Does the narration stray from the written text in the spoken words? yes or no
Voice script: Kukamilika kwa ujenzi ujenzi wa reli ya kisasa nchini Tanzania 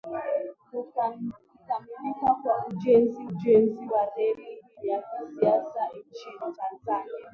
no